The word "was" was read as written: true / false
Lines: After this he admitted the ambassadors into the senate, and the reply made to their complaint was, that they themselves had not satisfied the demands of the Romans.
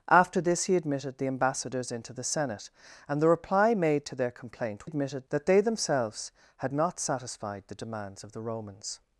false